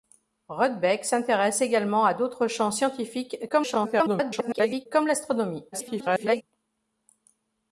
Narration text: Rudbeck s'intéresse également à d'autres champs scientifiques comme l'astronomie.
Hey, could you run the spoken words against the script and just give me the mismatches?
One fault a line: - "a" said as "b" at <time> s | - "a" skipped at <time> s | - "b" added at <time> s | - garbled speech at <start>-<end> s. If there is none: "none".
- garbled speech at 3.5-4.9 s
- garbled speech at 5.7-6.4 s